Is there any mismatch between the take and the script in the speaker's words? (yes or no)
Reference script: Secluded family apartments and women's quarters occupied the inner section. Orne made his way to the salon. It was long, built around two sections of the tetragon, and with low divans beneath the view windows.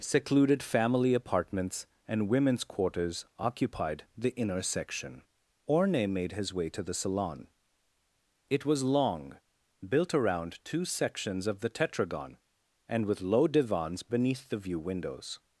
no